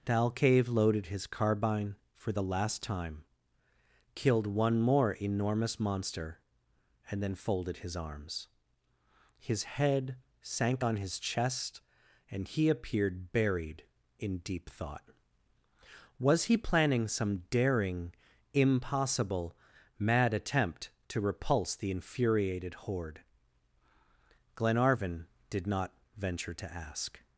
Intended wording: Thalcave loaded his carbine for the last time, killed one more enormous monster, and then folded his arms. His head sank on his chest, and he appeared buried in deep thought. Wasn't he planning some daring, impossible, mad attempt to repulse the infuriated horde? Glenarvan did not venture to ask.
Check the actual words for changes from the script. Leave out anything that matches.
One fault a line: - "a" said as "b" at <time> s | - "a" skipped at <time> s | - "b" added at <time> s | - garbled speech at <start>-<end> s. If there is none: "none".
- "Wasn't" said as "Was" at 16.2 s